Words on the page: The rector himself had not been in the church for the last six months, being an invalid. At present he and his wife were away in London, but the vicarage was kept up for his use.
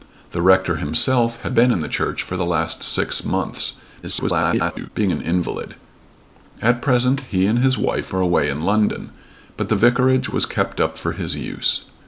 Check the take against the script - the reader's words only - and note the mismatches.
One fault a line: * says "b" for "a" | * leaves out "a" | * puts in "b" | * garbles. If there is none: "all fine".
* leaves out "not"
* garbles